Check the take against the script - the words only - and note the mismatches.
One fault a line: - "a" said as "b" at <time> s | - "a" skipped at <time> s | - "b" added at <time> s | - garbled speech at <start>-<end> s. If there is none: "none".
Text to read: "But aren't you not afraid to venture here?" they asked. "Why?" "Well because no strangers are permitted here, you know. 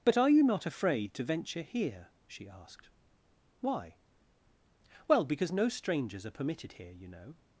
- "aren't" said as "are" at 0.2 s
- "they" said as "she" at 2.2 s